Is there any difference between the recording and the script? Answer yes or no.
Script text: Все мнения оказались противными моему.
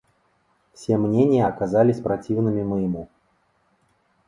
no